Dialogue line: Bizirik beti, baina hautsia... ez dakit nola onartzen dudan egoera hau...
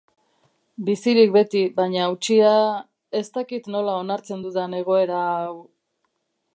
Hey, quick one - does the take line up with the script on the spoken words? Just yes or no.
yes